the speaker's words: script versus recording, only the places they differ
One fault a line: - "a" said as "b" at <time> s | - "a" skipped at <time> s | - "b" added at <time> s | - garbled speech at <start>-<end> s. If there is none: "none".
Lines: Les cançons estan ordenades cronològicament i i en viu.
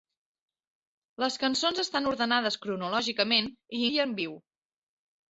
none